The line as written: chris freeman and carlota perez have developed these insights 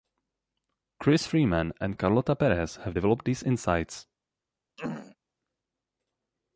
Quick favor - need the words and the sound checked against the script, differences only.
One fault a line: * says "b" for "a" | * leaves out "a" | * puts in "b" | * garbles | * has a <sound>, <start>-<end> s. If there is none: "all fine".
* has a throat clearing, 4.8-5.2 s